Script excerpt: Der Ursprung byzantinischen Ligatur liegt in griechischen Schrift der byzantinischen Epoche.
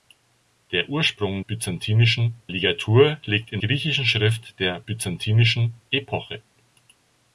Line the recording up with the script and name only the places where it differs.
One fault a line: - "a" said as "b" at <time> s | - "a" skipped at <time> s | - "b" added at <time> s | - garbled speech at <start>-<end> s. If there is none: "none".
none